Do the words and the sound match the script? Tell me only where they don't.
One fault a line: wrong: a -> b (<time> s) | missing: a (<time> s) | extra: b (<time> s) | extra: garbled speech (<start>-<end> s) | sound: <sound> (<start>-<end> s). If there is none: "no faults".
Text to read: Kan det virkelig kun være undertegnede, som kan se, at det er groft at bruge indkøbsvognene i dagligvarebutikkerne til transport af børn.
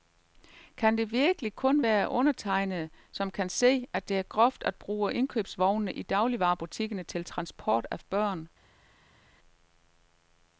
no faults